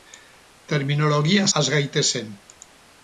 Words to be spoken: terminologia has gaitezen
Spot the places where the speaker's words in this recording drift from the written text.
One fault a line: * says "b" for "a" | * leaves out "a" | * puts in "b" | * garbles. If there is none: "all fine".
all fine